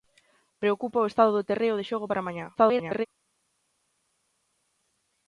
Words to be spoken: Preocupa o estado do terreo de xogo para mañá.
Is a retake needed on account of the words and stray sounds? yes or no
yes